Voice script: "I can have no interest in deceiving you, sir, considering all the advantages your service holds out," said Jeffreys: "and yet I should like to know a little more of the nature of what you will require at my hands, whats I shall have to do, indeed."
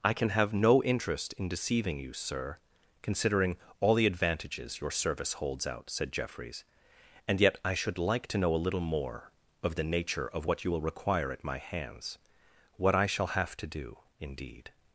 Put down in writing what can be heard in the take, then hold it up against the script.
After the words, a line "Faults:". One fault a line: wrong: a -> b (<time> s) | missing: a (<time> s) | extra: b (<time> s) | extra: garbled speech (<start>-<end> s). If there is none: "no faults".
"I can have no interest in deceiving you, sir, considering all the advantages your service holds out," said Jeffreys: "and yet I should like to know a little more of the nature of what you will require at my hands, what I shall have to do, indeed."
Faults:
wrong: whats -> what (12.7 s)